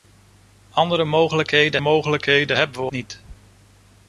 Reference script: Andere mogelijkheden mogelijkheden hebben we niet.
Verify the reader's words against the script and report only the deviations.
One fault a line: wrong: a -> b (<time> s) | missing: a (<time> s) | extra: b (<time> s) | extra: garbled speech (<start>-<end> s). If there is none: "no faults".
no faults